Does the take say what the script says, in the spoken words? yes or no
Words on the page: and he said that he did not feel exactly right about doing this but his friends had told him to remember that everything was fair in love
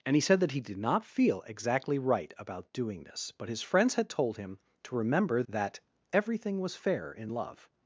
yes